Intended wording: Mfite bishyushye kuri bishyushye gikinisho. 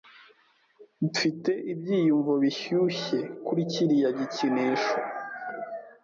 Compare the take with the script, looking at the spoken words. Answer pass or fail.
fail